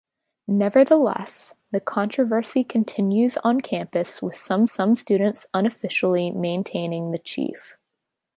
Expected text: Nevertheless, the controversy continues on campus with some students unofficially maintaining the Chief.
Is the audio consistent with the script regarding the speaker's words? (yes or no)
no